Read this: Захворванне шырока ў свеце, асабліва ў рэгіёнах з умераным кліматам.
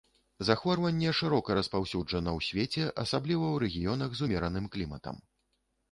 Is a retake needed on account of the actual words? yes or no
yes